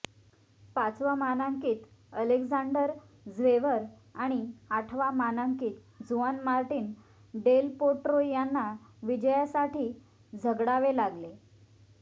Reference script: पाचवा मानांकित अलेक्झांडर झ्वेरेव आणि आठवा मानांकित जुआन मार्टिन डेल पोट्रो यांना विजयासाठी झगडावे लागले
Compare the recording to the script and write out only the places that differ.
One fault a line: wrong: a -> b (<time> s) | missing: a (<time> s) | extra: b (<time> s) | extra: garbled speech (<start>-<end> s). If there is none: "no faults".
no faults